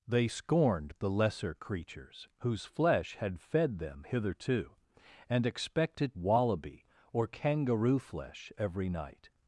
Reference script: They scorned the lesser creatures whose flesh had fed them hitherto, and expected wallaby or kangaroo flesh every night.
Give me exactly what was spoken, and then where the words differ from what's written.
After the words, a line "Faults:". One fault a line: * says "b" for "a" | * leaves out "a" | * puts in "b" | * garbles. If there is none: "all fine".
They scorned the lesser creatures whose flesh had fed them hitherto, and expected wallaby or kangaroo flesh every night.
Faults:
all fine